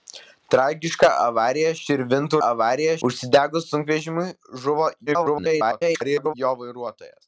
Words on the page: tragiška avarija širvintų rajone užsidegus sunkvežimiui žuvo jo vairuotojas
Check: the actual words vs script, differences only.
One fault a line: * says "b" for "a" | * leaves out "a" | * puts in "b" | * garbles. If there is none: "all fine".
* says "avarija" for "rajone"
* garbles